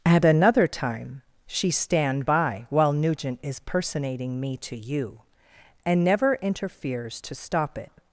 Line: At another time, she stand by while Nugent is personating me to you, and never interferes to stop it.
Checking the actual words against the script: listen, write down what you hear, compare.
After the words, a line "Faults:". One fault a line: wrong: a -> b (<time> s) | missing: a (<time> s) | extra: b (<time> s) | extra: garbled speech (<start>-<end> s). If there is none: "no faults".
At another time, she stand by while Nugent is personating me to you, and never interferes to stop it.
Faults:
no faults